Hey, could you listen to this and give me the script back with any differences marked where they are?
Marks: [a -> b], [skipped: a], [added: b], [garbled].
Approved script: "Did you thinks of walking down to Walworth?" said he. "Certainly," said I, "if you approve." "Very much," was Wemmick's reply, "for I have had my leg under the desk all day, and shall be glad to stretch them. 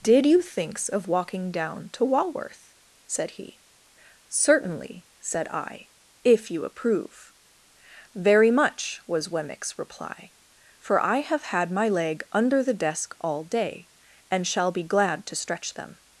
"Did you thinks of walking down to Walworth?" said he. "Certainly," said I, "if you approve." "Very much," was Wemmick's reply, "for I have had my leg under the desk all day, and shall be glad to stretch them.